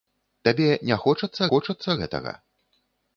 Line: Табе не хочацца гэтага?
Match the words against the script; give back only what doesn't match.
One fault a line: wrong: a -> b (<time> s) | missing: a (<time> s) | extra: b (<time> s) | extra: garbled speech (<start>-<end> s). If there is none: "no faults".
extra: хочацца (1.5 s)